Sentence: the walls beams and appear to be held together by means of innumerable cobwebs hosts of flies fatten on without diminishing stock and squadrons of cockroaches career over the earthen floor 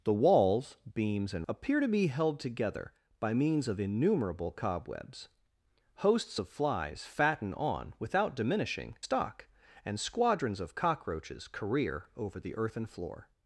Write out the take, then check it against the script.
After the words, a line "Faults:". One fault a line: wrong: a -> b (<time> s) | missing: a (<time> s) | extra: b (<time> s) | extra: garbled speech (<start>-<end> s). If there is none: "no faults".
the walls beams and appear to be held together by means of innumerable cobwebs hosts of flies fatten on without diminishing stock and squadrons of cockroaches career over the earthen floor
Faults:
no faults